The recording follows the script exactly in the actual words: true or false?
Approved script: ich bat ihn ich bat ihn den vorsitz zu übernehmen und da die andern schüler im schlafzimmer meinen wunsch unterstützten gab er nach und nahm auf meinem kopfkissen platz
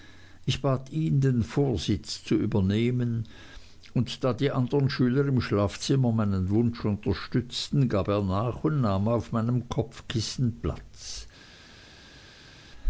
false